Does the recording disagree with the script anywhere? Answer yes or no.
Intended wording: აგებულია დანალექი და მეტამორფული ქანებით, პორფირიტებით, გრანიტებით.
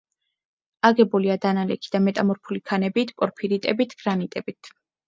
no